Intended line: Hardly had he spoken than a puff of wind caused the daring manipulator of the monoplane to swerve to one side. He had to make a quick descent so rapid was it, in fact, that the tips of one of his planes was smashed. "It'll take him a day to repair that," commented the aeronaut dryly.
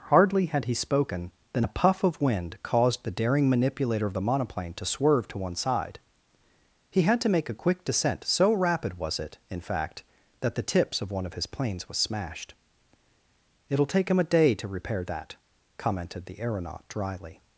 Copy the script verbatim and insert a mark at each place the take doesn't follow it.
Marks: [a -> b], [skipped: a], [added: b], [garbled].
Hardly had he spoken than a puff of wind caused the daring manipulator of the monoplane to swerve to one side. He had to make a quick descent so rapid was it, in fact, that the tips of one of his planes was smashed. "It'll take him a day to repair that," commented the aeronaut dryly.